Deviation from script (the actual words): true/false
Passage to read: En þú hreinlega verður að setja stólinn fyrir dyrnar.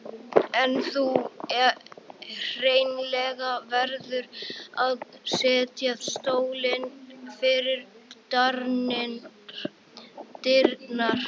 false